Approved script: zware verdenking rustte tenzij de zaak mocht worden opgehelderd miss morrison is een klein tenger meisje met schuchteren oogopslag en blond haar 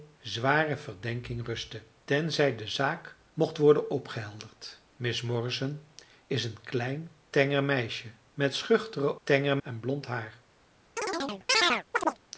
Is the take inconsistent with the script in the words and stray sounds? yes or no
yes